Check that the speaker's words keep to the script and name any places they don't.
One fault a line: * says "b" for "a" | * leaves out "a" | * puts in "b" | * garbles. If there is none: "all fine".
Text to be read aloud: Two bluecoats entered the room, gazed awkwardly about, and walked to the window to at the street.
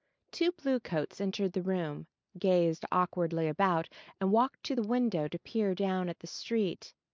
* puts in "peer down"